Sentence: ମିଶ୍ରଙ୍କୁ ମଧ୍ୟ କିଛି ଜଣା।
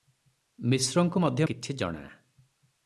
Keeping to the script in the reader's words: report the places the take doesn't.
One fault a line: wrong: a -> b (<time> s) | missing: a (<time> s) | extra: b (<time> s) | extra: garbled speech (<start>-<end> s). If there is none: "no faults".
no faults